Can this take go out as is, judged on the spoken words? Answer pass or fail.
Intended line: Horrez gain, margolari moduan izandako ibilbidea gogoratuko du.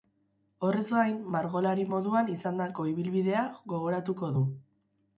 pass